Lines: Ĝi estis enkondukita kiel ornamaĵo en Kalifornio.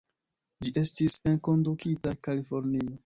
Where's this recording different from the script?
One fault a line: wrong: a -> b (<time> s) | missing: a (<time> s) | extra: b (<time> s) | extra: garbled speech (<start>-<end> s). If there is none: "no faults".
missing: kiel ornamaĵo en (2.1 s)